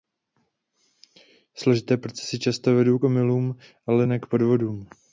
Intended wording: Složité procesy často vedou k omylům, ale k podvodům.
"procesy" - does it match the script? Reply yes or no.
yes